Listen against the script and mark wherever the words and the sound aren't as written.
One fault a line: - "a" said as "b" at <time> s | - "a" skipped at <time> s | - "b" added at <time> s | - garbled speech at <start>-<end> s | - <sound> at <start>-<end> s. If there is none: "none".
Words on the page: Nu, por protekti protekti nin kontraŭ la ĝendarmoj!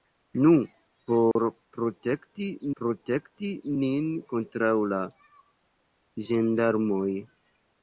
- dropout at 1.3-1.4 s